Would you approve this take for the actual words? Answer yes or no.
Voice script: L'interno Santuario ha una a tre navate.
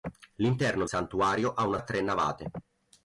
yes